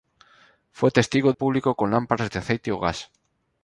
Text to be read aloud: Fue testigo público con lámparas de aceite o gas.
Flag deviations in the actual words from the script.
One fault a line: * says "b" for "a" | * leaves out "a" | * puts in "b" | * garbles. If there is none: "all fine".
all fine